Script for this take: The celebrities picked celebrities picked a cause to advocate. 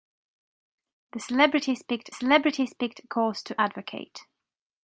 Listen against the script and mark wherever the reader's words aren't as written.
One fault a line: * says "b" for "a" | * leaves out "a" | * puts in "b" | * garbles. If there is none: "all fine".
all fine